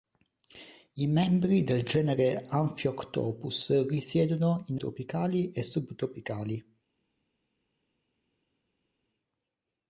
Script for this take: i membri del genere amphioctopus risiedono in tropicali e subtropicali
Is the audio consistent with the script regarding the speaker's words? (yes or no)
yes